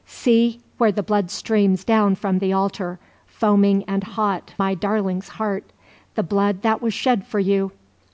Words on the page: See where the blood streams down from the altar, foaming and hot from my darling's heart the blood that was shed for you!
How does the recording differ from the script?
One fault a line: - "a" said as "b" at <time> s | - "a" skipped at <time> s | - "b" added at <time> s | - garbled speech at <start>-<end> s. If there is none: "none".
- "from" skipped at 4.5 s